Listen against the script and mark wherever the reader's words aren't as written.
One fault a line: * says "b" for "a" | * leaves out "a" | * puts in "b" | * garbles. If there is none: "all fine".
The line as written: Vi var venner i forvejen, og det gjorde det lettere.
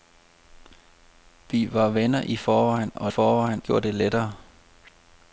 * says "forvejen" for "det"